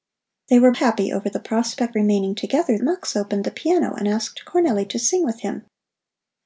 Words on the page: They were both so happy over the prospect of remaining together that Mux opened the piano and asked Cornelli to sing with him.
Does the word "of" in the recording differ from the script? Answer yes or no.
yes